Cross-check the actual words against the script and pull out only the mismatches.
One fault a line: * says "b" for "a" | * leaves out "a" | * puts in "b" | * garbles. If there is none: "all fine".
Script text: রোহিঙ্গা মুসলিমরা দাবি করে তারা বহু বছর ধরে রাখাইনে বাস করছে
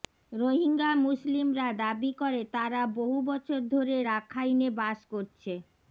all fine